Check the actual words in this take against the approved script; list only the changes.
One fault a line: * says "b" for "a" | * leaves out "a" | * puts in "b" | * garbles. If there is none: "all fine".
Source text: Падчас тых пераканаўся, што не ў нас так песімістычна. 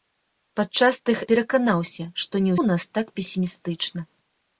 all fine